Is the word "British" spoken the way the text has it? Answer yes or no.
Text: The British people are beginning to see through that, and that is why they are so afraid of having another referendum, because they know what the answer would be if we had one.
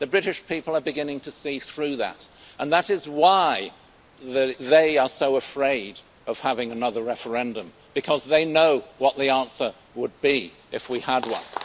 yes